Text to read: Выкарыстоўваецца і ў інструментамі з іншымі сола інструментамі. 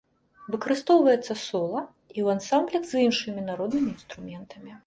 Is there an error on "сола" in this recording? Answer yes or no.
yes